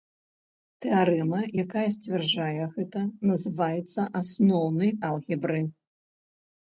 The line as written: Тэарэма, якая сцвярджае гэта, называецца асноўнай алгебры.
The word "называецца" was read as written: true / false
true